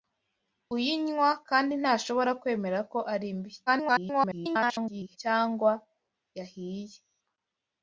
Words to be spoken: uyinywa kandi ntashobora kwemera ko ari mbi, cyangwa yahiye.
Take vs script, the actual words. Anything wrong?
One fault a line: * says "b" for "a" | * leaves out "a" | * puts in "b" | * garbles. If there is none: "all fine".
* garbles